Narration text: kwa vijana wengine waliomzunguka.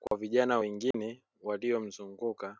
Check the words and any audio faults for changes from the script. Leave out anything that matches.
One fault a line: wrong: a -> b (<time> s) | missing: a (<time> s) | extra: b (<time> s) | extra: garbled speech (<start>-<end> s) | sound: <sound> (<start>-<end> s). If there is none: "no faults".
sound: dropout (0.1-0.1 s)
sound: dropout (0.9-0.9 s)